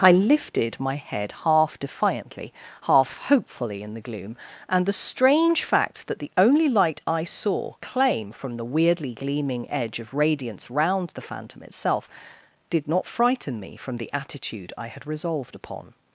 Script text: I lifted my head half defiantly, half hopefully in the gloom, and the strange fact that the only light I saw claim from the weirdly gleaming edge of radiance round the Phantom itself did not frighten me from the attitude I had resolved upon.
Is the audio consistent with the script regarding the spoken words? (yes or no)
yes